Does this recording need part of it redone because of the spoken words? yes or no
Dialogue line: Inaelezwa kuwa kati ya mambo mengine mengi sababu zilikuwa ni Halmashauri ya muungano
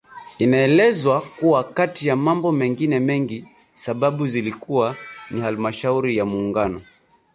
no